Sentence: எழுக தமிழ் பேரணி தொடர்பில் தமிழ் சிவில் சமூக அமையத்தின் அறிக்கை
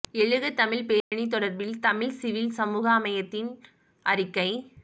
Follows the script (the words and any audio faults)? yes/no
no